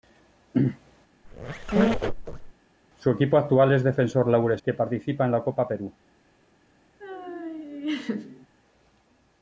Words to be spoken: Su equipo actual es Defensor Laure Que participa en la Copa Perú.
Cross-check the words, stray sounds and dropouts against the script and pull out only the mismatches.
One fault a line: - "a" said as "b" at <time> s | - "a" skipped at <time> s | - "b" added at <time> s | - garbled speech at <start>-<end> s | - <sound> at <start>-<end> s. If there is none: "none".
- squeak at 1.2-2.5 s
- laugh at 7.0-8.5 s